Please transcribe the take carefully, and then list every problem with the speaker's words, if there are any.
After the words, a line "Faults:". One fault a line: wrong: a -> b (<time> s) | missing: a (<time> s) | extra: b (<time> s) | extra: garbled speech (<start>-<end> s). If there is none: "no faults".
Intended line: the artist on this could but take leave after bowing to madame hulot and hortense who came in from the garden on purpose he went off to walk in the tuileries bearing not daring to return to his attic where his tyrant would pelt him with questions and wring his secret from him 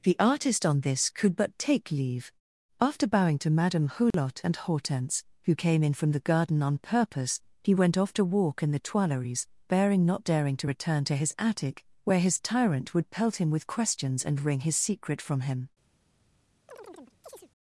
the artist on this could but take leave after bowing to madame hulot and hortense who came in from the garden on purpose he went off to walk in the tuileries bearing not daring to return to his attic where his tyrant would pelt him with questions and wring his secret from him
Faults:
no faults